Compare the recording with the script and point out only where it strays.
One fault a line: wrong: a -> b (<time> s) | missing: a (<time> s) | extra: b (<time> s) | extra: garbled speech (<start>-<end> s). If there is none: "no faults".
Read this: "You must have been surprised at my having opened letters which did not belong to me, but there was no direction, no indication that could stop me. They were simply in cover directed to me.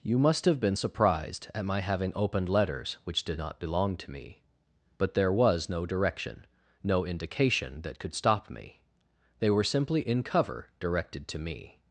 no faults